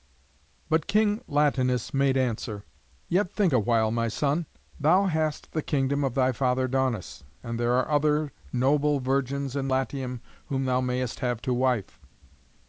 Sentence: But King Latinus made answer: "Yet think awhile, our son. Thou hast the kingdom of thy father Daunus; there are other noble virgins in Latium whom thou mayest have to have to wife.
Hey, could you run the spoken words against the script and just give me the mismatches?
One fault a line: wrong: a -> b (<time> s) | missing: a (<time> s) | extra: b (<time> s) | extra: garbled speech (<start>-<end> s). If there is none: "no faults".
wrong: our -> my (3.9 s)
extra: and (7.4 s)
missing: have to (11.5 s)